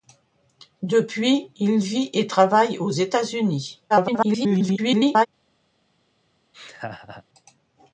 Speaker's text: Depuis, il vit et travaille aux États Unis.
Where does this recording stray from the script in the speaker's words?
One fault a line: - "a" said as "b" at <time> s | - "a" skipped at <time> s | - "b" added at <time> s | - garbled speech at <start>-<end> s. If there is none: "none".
- garbled speech at 3.9-5.3 s